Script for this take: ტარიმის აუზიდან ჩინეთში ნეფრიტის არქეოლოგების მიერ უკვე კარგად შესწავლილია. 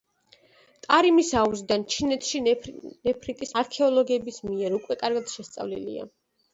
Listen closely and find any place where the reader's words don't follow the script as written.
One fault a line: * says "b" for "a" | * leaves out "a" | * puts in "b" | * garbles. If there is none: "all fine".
all fine